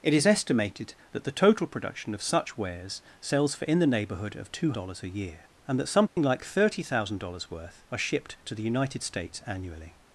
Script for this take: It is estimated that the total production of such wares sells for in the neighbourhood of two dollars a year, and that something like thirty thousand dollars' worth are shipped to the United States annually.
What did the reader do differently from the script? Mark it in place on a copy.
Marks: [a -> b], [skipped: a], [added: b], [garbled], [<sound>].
It is estimated that the total production of such wares sells for in the neighbourhood of two dollars a year, and that something [dropout] like thirty thousand dollars' worth are shipped to the United States annually.